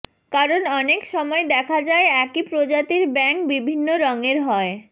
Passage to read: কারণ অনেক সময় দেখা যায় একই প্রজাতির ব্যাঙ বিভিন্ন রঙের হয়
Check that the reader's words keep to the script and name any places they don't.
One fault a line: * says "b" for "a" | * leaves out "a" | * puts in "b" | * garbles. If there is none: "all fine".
all fine